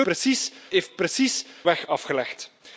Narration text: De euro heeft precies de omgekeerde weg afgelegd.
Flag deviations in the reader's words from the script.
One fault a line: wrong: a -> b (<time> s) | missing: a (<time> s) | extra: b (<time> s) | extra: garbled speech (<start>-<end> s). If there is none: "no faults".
wrong: euro -> precies (0.0 s)
missing: de omgekeerde (1.4 s)